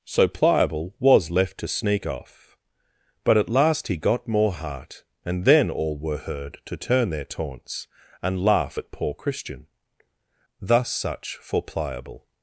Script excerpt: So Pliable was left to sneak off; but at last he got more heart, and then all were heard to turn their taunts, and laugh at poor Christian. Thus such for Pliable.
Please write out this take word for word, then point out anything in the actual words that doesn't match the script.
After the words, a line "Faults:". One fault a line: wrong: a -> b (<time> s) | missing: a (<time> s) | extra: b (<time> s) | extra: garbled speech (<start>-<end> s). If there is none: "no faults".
So Pliable was left to sneak off; but at last he got more heart, and then all were heard to turn their taunts, and laugh at poor Christian. Thus such for Pliable.
Faults:
no faults